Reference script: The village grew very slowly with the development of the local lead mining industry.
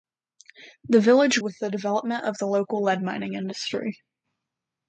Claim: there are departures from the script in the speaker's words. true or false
true